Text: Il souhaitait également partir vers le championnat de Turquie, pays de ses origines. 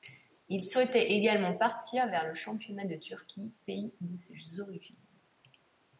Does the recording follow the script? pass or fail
pass